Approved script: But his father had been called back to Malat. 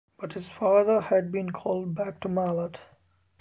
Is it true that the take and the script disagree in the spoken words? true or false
false